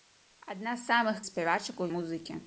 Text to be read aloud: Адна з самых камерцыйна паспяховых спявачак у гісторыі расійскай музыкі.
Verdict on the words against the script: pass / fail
fail